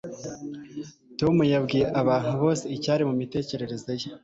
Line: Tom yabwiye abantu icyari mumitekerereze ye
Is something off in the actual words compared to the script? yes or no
yes